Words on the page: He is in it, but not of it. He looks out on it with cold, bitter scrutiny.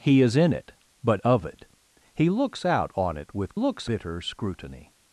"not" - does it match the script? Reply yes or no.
no